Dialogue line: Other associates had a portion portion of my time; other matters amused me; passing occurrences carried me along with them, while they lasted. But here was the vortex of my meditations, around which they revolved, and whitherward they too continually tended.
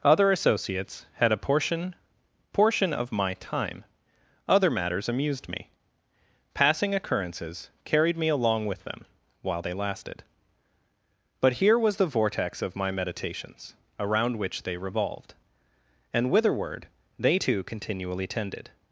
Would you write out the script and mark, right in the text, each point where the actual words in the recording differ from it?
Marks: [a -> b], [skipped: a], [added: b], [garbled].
Other associates had a portion portion of my time; other matters amused me; passing occurrences carried me along with them, while they lasted. But here was the vortex of my meditations, around which they revolved, and whitherward they too continually tended.